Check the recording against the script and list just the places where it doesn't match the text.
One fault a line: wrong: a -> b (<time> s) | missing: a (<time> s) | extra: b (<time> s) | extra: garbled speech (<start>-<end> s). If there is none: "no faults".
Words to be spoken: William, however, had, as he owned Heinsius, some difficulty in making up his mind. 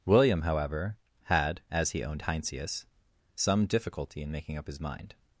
no faults